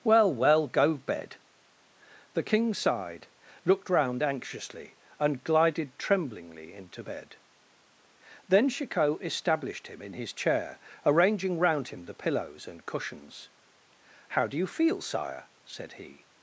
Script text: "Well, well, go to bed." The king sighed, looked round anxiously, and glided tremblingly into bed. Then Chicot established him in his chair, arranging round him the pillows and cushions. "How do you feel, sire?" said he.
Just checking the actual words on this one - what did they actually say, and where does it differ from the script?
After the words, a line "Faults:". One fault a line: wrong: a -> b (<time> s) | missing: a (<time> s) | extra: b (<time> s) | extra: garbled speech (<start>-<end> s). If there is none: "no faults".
"Well, well, go bed." The king sighed, looked round anxiously, and glided tremblingly into bed. Then Chicot established him in his chair, arranging round him the pillows and cushions. "How do you feel, sire?" said he.
Faults:
missing: to (1.0 s)